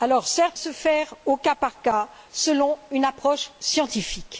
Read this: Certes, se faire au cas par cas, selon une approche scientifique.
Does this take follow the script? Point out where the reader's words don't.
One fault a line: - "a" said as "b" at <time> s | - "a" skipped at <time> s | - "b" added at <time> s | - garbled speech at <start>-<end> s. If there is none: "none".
none